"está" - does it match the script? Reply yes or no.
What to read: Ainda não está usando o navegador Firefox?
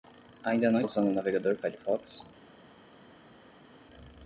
no